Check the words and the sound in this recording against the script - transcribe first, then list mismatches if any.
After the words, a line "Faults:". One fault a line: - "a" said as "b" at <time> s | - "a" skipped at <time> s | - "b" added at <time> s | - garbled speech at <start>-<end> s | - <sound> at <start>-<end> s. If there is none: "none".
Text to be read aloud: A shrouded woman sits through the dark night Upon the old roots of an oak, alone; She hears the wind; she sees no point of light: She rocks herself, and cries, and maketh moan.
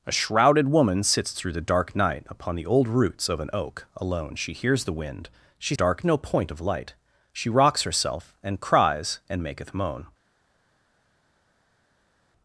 A shrouded woman sits through the dark night Upon the old roots of an oak, alone; She hears the wind; she dark no point of light: She rocks herself, and cries, and maketh moan.
Faults:
- "sees" said as "dark" at 5.7 s